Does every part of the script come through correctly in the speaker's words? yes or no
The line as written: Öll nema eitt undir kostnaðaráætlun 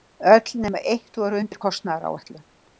no